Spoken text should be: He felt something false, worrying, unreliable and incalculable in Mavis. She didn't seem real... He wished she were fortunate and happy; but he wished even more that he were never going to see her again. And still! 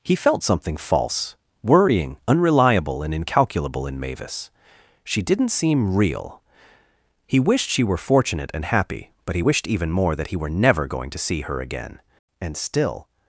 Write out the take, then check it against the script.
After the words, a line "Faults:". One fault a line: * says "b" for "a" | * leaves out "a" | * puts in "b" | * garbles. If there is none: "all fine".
He felt something false, worrying, unreliable and incalculable in Mavis. She didn't seem real... He wished she were fortunate and happy; but he wished even more that he were never going to see her again. And still!
Faults:
all fine